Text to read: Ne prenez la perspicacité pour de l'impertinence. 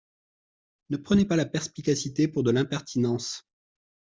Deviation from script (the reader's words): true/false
true